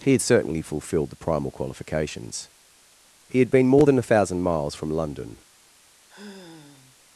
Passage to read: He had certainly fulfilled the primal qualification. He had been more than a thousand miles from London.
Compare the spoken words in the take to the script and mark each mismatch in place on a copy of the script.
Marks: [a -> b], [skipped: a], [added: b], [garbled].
He had certainly fulfilled the primal [qualification. -> qualifications] He had been more than a thousand miles from London.